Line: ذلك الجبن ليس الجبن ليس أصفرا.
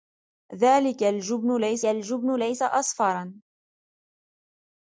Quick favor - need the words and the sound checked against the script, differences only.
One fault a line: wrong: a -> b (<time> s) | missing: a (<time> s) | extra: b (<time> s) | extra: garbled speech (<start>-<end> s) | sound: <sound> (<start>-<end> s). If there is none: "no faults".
no faults